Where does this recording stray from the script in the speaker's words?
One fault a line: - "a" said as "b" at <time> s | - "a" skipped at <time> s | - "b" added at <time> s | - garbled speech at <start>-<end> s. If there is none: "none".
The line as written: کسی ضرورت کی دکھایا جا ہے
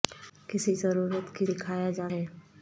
none